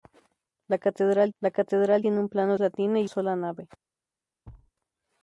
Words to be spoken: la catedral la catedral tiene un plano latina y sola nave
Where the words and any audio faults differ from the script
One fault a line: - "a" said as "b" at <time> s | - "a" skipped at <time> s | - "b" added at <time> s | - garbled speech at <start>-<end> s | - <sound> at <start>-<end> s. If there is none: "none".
- thud at 4.4-4.7 s